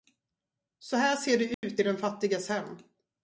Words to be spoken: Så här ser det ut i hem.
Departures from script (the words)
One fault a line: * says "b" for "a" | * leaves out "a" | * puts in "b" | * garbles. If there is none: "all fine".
* puts in "den fattiges"